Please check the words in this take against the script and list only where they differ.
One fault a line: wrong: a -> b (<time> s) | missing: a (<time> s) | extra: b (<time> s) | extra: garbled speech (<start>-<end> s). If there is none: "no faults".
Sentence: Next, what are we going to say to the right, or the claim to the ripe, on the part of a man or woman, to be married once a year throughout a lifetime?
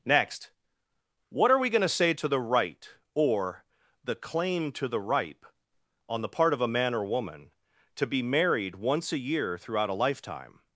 no faults